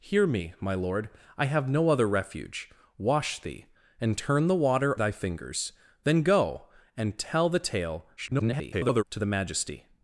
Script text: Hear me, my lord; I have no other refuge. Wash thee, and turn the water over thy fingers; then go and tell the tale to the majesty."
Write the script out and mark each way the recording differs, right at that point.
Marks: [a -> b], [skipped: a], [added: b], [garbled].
Hear me, my lord; I have no other refuge. Wash thee, and turn the water [skipped: over] thy fingers; then go and tell the tale [garbled] to the majesty."